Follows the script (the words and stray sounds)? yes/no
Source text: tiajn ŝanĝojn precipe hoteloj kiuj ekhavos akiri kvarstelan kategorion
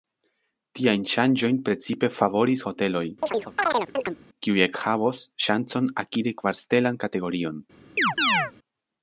no